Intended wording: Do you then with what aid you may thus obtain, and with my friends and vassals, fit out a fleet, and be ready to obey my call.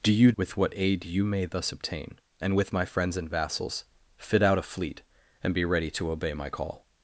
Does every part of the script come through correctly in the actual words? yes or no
no